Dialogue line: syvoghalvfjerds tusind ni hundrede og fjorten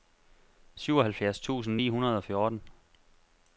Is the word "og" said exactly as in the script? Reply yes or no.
yes